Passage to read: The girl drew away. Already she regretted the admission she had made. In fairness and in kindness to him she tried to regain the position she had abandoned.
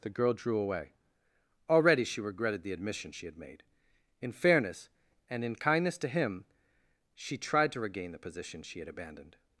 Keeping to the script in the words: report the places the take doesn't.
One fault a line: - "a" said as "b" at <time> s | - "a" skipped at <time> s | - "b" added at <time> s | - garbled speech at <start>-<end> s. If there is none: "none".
none